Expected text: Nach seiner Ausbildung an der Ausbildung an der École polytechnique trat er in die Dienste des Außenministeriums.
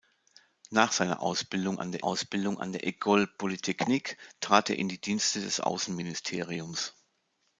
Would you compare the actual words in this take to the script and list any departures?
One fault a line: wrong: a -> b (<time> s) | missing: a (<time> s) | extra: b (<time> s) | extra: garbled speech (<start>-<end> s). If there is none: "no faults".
no faults